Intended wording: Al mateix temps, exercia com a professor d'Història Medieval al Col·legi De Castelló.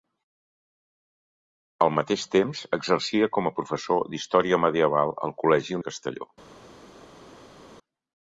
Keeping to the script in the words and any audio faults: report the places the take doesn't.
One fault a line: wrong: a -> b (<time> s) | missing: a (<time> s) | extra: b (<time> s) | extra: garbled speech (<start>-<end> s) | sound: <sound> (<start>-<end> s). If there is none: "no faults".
no faults